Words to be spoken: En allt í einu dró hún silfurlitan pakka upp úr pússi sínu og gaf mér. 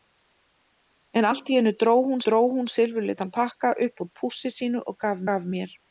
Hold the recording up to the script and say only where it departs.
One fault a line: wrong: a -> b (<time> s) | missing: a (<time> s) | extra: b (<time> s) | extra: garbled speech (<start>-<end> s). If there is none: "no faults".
extra: dró hún (2.3 s)
extra: gaf (5.3 s)